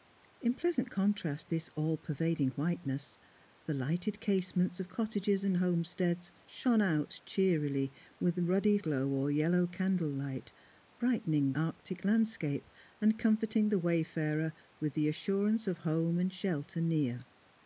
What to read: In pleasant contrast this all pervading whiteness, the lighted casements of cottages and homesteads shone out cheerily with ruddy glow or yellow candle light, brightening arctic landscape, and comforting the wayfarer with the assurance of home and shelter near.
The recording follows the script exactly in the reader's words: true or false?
true